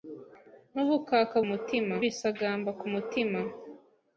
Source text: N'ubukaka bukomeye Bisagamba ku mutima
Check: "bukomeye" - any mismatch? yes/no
yes